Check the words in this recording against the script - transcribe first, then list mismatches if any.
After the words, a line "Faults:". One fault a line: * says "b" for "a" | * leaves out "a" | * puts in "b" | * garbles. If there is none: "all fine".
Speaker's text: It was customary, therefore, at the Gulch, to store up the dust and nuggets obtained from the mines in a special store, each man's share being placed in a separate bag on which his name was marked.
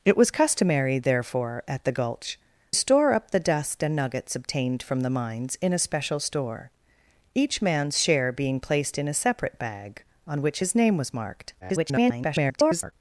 It was customary, therefore, at the Gulch, store up the dust and nuggets obtained from the mines in a special store, each man's share being placed in a separate bag on which his name was marked. [garbled]
Faults:
* leaves out "to"
* garbles